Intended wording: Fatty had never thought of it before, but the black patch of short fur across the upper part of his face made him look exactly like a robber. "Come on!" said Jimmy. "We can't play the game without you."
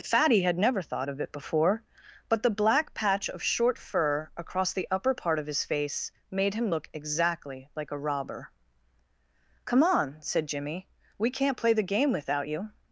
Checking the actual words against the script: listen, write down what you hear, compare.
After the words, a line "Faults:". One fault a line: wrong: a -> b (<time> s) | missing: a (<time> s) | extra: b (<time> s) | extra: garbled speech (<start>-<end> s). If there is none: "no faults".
Fatty had never thought of it before, but the black patch of short fur across the upper part of his face made him look exactly like a robber. "Come on!" said Jimmy. "We can't play the game without you."
Faults:
no faults